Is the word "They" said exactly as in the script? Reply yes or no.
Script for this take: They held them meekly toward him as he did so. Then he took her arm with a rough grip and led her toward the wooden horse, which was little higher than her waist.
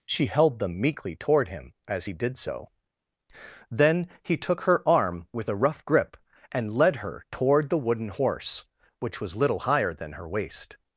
no